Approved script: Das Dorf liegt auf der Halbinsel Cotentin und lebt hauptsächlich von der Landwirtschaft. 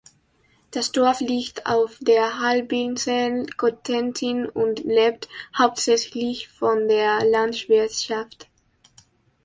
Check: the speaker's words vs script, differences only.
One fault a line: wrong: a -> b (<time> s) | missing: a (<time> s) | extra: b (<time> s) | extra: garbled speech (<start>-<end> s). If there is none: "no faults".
no faults